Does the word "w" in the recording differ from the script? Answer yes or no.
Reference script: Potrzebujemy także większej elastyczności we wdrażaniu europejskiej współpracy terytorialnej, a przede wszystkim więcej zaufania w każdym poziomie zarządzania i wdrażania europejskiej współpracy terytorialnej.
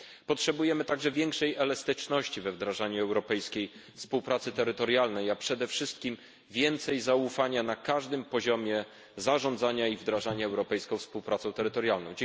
yes